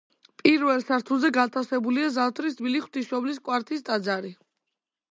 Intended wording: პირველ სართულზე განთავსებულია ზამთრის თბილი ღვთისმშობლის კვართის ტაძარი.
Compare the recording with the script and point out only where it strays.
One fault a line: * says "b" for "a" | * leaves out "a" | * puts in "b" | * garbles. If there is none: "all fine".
all fine